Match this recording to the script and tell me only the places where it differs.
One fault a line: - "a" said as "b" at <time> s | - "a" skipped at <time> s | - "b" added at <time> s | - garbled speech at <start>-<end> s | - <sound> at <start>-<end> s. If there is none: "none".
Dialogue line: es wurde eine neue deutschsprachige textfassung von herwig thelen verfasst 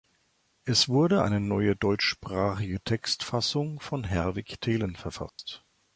- dropout at 5.3-5.4 s